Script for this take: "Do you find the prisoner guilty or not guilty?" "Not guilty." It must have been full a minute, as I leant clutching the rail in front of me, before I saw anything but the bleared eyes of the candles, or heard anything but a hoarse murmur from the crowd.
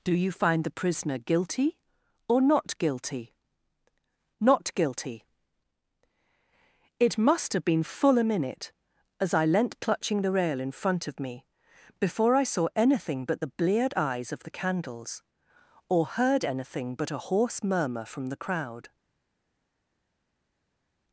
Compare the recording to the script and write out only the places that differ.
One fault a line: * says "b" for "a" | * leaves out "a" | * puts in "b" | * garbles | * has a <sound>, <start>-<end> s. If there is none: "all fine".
all fine